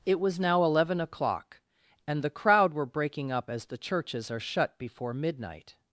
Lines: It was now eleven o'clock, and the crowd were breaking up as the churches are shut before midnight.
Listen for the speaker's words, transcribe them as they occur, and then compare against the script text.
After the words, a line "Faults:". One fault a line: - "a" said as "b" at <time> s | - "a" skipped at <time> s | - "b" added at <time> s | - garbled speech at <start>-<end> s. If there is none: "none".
It was now eleven o'clock, and the crowd were breaking up as the churches are shut before midnight.
Faults:
none